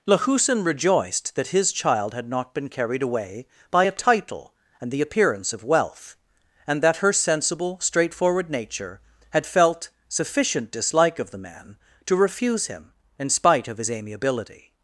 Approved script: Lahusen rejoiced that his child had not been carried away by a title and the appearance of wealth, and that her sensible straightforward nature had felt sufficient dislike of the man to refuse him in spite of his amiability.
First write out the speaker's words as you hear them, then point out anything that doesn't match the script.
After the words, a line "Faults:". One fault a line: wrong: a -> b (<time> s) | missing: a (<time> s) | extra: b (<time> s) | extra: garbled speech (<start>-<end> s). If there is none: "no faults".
Lahusen rejoiced that his child had not been carried away by a title and the appearance of wealth, and that her sensible straightforward nature had felt sufficient dislike of the man to refuse him in spite of his amiability.
Faults:
no faults